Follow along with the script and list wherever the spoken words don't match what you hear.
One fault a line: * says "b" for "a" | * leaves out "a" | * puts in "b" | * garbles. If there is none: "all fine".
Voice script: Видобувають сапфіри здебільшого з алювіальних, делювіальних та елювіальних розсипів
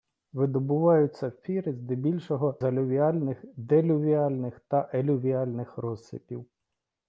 * leaves out "з"